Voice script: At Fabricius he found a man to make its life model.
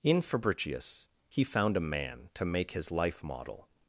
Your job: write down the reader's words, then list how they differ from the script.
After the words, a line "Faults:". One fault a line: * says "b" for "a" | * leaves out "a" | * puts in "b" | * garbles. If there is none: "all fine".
In Fabricius he found a man to make his life model.
Faults:
* says "In" for "At"
* says "his" for "its"